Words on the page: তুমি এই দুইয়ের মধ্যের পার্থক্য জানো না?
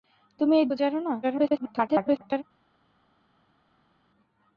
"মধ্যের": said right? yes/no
no